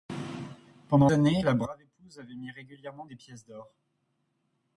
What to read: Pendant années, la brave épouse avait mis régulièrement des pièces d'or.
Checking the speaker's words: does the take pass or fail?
pass